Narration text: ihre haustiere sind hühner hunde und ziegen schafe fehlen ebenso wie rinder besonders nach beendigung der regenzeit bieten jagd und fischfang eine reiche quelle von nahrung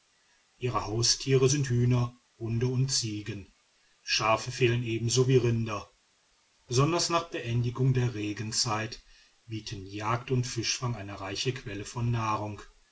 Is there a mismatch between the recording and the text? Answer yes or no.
no